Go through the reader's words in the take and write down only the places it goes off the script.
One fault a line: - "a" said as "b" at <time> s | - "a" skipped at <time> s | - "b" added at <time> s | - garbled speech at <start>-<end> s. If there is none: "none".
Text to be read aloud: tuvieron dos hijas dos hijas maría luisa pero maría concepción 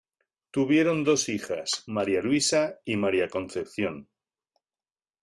- "dos hijas" skipped at 1.9 s
- "pero" said as "y" at 2.8 s